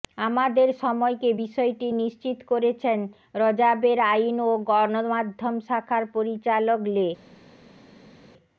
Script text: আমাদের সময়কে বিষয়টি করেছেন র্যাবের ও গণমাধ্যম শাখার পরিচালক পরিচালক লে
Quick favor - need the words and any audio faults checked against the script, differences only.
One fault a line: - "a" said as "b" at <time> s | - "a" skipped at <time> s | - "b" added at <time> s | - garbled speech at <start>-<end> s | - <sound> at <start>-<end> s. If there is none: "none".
- "নিশ্চিত" added at 2.0 s
- "আইন" added at 4.1 s
- "পরিচালক" skipped at 6.8 s